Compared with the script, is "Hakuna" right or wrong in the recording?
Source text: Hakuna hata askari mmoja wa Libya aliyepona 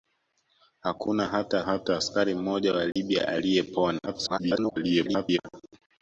right